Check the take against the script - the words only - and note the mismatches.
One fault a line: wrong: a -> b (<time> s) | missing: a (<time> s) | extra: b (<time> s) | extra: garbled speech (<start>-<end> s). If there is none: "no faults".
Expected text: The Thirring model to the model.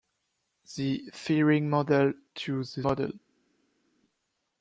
no faults